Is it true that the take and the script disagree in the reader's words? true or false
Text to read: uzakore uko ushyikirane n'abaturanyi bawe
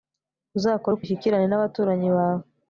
false